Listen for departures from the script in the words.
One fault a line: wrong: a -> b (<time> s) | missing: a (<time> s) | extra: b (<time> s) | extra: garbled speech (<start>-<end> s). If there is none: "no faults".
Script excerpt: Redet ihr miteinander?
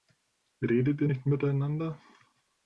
extra: nicht (1.0 s)